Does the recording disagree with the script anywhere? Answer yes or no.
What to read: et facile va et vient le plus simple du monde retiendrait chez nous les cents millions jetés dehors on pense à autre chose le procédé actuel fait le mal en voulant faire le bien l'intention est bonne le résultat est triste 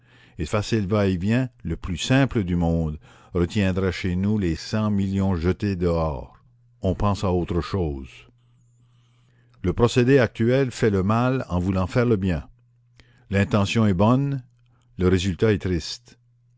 no